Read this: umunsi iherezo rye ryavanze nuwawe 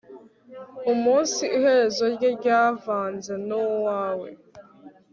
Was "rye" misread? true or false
false